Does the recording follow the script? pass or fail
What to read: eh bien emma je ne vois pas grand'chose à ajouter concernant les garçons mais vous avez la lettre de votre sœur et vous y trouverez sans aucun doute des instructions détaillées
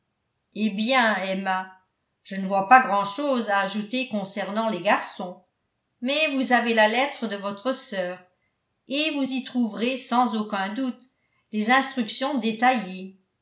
pass